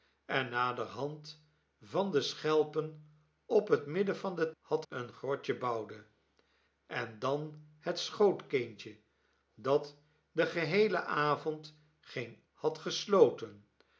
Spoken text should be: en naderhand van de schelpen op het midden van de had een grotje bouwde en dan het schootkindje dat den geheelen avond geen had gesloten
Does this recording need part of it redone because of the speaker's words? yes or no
no